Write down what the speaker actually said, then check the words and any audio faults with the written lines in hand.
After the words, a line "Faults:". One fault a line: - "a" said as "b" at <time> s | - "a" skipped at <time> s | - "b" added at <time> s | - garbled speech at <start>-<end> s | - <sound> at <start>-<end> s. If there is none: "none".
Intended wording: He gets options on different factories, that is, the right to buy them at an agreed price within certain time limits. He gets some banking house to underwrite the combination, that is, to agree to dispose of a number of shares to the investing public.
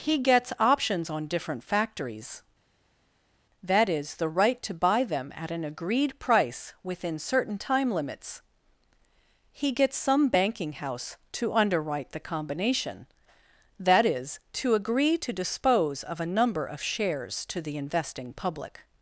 He gets options on different factories, that is, the right to buy them at an agreed price within certain time limits. He gets some banking house to underwrite the combination, that is, to agree to dispose of a number of shares to the investing public.
Faults:
none